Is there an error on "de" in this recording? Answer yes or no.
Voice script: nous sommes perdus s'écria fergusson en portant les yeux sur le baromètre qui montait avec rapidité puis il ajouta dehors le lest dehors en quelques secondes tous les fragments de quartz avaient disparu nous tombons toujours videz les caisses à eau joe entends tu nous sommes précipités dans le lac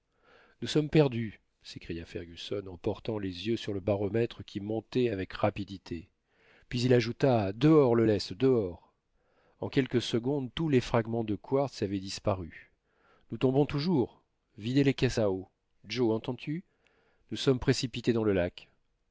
no